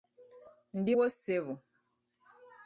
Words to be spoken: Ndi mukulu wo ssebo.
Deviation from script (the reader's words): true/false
true